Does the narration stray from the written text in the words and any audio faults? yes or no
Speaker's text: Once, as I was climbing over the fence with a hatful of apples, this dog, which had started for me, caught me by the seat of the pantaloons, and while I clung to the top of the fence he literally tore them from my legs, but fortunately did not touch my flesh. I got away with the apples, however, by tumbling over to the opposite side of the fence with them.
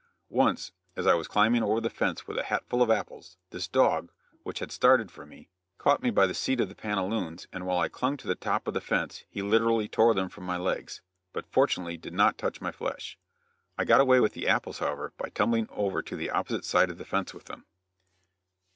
no